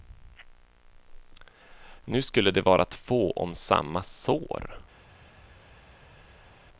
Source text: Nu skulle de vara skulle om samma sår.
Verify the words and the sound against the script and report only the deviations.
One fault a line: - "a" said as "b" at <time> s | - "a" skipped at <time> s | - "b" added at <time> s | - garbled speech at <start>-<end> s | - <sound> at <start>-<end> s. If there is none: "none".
- "skulle" said as "två" at 2.9 s